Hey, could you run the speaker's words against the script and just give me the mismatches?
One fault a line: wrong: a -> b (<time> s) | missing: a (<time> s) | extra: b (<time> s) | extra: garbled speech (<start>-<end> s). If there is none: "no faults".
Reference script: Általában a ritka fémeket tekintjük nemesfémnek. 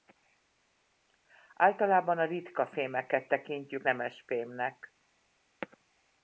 no faults